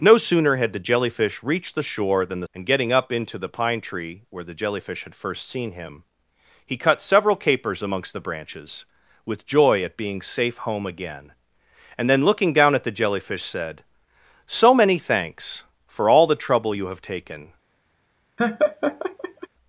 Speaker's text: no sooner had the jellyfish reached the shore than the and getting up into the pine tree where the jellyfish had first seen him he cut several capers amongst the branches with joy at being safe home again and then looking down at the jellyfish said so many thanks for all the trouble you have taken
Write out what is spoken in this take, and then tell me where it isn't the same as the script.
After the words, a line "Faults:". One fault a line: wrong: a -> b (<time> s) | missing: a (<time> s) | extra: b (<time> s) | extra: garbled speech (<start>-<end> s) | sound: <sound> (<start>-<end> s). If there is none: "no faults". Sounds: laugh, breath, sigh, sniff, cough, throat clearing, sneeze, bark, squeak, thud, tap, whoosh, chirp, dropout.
no sooner had the jellyfish reached the shore than the and getting up into the pine tree where the jellyfish had first seen him he cut several capers amongst the branches with joy at being safe home again and then looking down at the jellyfish said so many thanks for all the trouble you have taken
Faults:
sound: laugh (18.4-19.5 s)